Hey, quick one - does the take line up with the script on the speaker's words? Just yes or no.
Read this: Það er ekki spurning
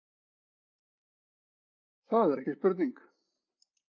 yes